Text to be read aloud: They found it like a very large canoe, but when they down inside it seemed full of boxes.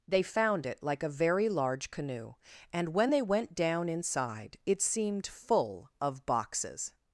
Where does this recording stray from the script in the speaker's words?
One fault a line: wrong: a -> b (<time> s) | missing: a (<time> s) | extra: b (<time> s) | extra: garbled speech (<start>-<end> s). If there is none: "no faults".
wrong: but -> and (2.7 s)
extra: went (3.2 s)